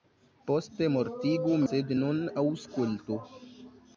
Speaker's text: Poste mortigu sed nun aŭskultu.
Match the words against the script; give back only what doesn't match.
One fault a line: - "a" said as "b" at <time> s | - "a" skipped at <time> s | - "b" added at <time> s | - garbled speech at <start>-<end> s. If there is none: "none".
none